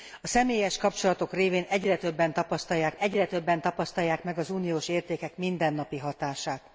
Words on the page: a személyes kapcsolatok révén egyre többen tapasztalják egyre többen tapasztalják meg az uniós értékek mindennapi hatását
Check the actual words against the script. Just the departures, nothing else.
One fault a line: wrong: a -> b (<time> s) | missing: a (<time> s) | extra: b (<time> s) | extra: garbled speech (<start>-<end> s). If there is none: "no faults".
no faults